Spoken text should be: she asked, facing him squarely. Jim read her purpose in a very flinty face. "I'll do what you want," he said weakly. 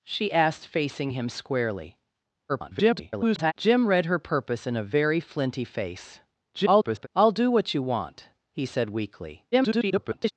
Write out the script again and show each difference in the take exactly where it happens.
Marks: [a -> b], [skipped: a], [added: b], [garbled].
she asked, facing him squarely. [garbled] Jim read her purpose in a very flinty face. [garbled] "I'll do what you want," he said weakly. [garbled]